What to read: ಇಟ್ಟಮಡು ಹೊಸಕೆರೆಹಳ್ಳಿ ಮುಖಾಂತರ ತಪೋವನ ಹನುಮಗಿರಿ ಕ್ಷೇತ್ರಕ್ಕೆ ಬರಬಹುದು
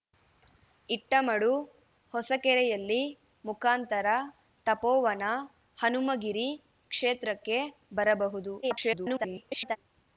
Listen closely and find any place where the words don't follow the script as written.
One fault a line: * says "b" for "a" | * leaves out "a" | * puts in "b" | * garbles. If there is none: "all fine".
* garbles